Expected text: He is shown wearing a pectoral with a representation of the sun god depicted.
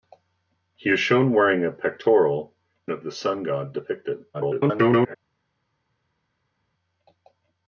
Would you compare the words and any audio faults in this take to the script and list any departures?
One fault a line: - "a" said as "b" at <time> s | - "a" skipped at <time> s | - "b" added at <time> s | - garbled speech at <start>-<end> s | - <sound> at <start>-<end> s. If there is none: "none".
- "with a representation" skipped at 2.5 s
- garbled speech at 4.3-5.1 s